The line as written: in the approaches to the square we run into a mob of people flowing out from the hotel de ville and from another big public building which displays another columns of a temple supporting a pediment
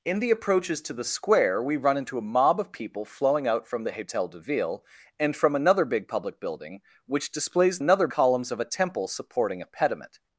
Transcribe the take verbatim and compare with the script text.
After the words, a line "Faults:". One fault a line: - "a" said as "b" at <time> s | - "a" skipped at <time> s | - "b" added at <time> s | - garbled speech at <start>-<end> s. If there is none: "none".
in the approaches to the square we run into a mob of people flowing out from the hotel de ville and from another big public building which displays another columns of a temple supporting a pediment
Faults:
none